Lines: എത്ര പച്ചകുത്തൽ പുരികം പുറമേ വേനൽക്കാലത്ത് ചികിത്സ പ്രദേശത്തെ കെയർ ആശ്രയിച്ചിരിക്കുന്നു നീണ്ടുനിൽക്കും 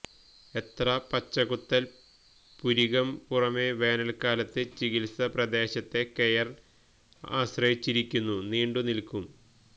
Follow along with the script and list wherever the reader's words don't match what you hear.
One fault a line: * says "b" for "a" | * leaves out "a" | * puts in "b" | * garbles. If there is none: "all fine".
all fine